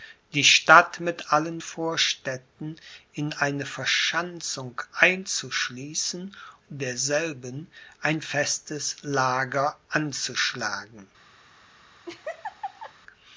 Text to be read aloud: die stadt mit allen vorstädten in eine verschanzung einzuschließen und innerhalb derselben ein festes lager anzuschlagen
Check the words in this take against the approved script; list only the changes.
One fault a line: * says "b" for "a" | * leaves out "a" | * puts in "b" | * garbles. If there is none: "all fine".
* leaves out "und innerhalb"